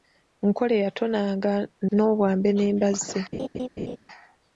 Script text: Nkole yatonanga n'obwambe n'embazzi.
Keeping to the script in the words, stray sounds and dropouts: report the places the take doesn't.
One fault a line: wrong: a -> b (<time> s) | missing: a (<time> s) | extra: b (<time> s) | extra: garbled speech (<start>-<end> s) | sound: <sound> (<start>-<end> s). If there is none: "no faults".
sound: laugh (3.3-4.0 s)